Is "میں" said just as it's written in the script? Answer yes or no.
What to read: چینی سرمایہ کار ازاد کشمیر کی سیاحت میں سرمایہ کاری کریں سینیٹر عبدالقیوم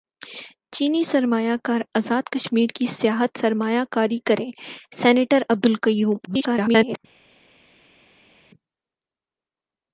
no